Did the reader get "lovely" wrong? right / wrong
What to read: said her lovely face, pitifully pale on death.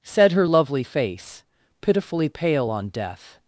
right